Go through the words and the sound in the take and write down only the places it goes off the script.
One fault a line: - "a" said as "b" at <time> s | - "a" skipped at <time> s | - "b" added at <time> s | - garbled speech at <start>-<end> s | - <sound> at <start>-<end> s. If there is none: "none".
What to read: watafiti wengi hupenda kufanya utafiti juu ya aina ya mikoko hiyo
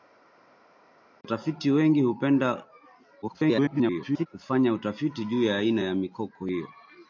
- garbled speech at 3.2-4.3 s